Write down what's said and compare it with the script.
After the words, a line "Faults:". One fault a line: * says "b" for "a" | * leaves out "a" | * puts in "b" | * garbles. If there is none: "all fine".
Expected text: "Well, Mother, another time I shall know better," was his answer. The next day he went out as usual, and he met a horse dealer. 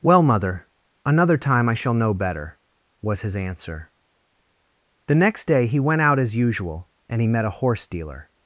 "Well, Mother, another time I shall know better," was his answer. The next day he went out as usual, and he met a horse dealer.
Faults:
all fine